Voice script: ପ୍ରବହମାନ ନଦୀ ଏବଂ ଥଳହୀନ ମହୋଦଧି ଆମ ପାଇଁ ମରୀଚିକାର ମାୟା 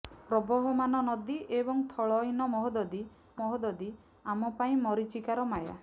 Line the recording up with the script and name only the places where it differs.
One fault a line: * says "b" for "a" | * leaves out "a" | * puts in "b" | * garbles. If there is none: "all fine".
* puts in "ମହୋଦଧି"